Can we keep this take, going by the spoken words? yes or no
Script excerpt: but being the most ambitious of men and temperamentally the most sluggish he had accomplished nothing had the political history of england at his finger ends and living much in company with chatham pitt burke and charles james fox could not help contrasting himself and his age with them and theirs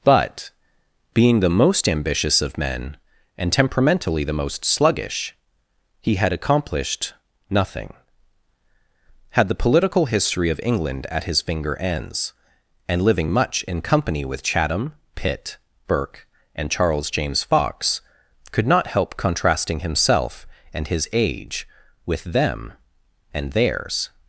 yes